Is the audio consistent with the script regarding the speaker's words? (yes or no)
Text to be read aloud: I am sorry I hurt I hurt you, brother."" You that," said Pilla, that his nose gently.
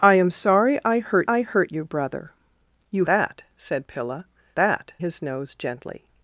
yes